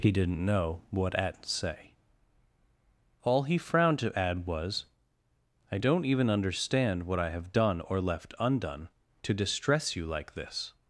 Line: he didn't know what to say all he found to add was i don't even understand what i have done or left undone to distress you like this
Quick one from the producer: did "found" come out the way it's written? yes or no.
no